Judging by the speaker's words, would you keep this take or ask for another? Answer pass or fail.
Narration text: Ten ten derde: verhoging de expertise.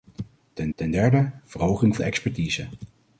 pass